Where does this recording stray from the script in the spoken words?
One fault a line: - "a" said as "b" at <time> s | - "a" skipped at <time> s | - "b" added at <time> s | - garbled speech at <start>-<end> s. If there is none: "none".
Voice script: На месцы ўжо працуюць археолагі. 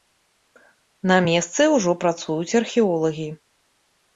none